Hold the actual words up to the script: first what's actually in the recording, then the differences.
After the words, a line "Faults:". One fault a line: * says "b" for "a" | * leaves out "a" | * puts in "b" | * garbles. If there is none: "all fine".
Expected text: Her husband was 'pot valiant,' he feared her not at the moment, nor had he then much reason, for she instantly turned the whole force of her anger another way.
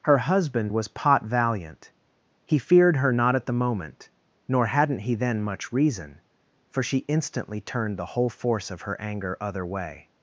Her husband was 'pot valiant,' he feared her not at the moment, nor hadn't he then much reason, for she instantly turned the whole force of her anger other way.
Faults:
* says "hadn't" for "had"
* says "other" for "another"